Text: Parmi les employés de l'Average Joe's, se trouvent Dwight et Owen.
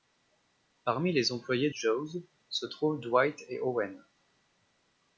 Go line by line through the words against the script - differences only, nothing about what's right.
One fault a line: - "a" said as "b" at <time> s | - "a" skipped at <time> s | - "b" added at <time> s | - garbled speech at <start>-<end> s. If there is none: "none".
- "de l'Average" skipped at 1.7 s